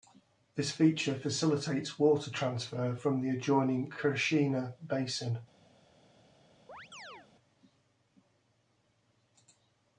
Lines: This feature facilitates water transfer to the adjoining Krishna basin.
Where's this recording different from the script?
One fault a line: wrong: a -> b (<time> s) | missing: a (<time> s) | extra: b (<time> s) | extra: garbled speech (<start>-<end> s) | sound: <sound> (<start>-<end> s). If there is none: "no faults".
wrong: to -> from (2.9 s)
sound: chirp (6.7-7.3 s)